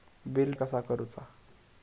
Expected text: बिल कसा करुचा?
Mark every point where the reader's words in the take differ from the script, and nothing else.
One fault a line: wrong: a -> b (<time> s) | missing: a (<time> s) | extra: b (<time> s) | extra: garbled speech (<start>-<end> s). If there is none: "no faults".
no faults